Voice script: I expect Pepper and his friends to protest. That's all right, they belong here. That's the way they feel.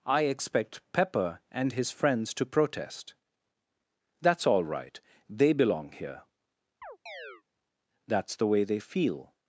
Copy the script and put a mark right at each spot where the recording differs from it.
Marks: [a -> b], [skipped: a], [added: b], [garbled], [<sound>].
I expect Pepper and his friends to protest. That's all right, they belong here. [chirp] That's the way they feel.